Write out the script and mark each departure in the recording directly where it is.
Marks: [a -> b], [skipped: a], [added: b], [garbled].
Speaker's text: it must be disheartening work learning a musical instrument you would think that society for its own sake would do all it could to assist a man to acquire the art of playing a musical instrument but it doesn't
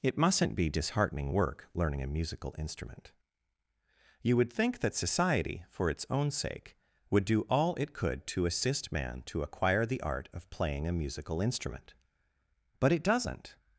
it [must -> mustn't] be disheartening work learning a musical instrument you would think that society for its own sake would do all it could to assist [skipped: a] man to acquire the art of playing a musical instrument but it doesn't